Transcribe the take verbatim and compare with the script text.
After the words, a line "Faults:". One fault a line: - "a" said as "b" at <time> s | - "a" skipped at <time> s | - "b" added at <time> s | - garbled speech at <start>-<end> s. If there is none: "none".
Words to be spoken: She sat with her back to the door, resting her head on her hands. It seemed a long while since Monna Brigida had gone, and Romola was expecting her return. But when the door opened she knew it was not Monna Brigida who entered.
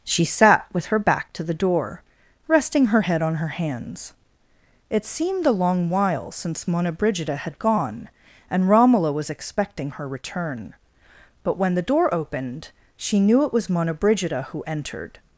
She sat with her back to the door, resting her head on her hands. It seemed a long while since Monna Brigida had gone, and Romola was expecting her return. But when the door opened she knew it was Monna Brigida who entered.
Faults:
- "not" skipped at 13.7 s